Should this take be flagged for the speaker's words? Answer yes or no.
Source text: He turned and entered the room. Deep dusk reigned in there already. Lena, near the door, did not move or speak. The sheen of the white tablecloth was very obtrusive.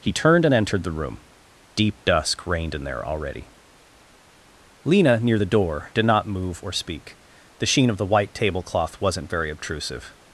yes